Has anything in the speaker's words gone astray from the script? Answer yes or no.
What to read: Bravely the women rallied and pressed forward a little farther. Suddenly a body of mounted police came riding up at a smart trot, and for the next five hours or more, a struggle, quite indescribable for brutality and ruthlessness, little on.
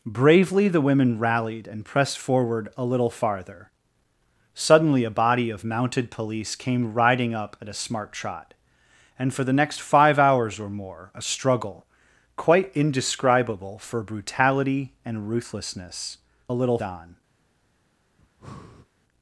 no